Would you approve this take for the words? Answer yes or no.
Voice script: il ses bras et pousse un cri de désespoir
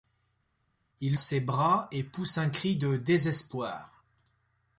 yes